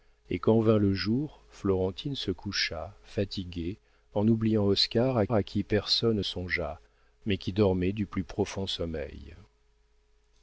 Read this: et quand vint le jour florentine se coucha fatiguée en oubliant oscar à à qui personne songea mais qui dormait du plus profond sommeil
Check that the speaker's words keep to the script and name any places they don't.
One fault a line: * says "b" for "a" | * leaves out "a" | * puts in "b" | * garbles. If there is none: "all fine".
all fine